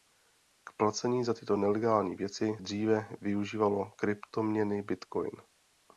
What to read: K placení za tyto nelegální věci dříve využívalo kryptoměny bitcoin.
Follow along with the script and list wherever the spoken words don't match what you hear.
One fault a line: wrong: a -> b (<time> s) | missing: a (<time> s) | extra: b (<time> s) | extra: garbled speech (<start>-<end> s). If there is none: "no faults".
no faults